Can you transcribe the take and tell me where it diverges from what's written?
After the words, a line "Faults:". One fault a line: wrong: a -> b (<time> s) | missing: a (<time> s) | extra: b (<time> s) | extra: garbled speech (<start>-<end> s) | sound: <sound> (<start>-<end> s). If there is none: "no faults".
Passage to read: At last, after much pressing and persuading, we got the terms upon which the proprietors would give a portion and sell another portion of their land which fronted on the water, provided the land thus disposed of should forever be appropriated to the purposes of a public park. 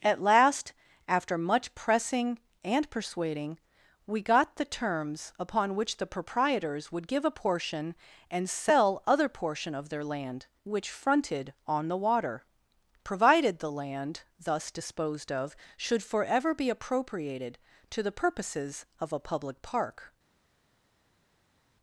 At last, after much pressing and persuading, we got the terms upon which the proprietors would give a portion and sell other portion of their land which fronted on the water, provided the land thus disposed of should forever be appropriated to the purposes of a public park.
Faults:
wrong: another -> other (9.1 s)